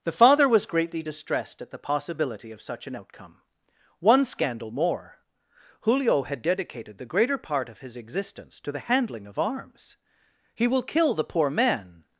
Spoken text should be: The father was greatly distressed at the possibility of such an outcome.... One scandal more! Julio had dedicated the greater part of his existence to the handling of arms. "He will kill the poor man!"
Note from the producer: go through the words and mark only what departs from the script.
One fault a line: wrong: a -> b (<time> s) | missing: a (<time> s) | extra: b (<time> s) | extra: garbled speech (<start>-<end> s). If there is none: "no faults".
no faults